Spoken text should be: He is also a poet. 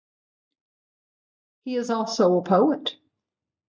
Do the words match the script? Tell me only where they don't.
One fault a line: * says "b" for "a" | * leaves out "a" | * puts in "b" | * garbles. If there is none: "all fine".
all fine